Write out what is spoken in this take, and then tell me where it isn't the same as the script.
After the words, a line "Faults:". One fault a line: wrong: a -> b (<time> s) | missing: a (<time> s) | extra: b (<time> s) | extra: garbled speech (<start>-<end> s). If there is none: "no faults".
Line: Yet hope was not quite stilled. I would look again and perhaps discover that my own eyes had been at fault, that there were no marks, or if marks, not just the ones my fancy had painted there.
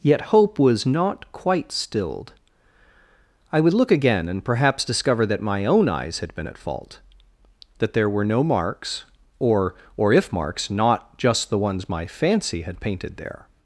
Yet hope was not quite stilled. I would look again and perhaps discover that my own eyes had been at fault, that there were no marks, or or if marks, not just the ones my fancy had painted there.
Faults:
extra: or (10.0 s)